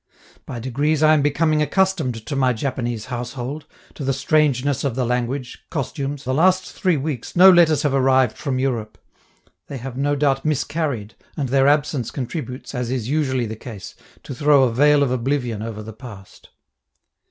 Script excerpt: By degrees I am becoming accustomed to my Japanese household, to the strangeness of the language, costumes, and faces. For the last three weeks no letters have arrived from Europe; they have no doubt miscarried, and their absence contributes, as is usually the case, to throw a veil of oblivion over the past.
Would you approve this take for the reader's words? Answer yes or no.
no